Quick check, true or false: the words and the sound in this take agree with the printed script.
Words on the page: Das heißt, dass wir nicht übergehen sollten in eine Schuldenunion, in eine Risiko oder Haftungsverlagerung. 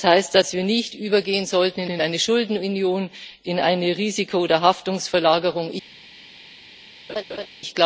false